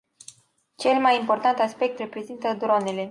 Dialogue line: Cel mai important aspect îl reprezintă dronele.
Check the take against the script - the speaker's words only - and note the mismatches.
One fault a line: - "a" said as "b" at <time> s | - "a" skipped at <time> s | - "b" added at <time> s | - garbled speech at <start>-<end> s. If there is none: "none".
- "îl" skipped at 2.0 s